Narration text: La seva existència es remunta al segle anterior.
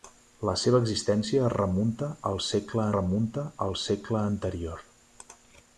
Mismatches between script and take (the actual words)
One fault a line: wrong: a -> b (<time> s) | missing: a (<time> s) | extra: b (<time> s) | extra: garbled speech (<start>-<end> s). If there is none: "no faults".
extra: remunta al segle (2.9 s)